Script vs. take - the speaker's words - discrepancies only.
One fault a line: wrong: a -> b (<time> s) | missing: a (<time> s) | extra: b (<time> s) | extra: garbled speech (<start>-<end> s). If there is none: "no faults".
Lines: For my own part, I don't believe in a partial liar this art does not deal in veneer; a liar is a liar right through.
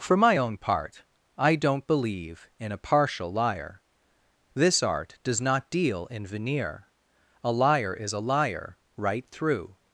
no faults